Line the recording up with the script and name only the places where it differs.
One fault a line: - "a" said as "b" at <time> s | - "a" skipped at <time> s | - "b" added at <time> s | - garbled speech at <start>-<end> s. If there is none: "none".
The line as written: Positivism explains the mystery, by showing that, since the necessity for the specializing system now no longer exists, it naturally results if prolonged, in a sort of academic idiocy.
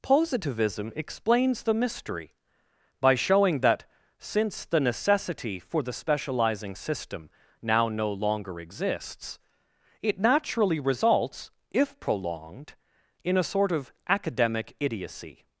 none